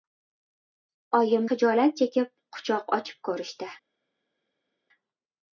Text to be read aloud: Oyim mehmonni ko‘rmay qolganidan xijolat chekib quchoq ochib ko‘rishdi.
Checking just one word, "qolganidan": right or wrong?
wrong